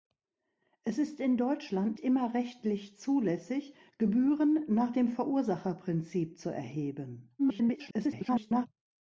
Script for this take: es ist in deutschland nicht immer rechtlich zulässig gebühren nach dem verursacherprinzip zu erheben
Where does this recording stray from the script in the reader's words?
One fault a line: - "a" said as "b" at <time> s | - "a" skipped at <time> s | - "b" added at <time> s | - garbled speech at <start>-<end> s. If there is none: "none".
- "nicht" skipped at 2.0 s
- garbled speech at 7.4-8.7 s